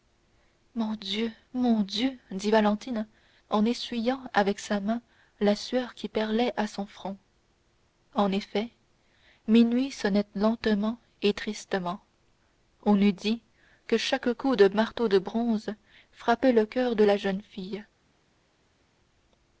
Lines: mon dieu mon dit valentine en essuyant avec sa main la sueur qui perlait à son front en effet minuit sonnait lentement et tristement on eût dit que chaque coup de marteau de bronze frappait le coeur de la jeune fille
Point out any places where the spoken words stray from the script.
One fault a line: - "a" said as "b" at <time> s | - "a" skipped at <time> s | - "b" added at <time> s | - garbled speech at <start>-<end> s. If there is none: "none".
- "dieu" added at 1.8 s